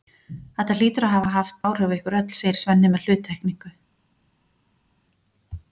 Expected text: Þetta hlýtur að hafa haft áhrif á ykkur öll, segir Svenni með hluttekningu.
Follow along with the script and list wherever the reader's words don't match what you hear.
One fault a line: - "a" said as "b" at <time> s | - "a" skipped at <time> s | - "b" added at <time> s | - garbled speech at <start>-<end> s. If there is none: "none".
none